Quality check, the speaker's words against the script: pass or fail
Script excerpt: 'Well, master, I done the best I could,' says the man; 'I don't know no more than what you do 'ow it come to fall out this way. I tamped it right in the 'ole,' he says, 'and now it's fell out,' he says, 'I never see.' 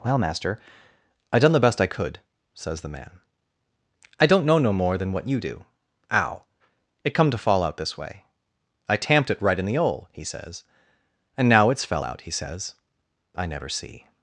pass